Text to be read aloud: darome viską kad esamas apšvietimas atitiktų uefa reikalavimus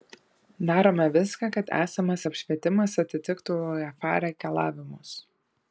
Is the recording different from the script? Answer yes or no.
no